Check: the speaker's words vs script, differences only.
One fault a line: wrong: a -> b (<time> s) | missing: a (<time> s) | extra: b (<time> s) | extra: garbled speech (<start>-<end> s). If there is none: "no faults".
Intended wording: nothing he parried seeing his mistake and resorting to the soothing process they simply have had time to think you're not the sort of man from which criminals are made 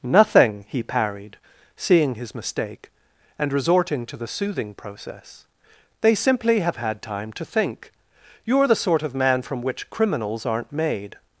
missing: not (8.7 s)
wrong: are -> aren't (10.4 s)